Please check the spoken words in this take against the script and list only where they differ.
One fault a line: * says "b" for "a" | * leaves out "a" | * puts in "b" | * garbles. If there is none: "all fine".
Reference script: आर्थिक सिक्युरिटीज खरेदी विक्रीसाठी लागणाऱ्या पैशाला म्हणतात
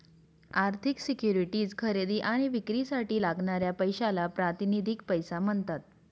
* puts in "आणि"
* puts in "प्रातिनिधिक पैसा"